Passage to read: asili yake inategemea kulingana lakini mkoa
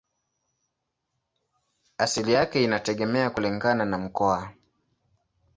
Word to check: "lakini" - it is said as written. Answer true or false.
false